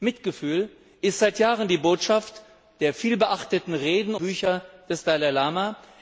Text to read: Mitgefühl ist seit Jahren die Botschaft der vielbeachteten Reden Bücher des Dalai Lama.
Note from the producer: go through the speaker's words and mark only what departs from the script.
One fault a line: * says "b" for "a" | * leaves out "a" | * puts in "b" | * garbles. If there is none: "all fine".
all fine